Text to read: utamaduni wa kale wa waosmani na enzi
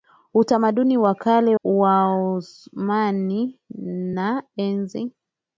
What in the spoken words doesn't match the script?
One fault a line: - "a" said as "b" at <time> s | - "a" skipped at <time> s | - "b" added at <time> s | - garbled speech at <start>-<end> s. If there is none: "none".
- "wa" skipped at 1.6 s